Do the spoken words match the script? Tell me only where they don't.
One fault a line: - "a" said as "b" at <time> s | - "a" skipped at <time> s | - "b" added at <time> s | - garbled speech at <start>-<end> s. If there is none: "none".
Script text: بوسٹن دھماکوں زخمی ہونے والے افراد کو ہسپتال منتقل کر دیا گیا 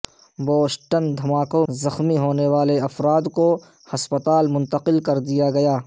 none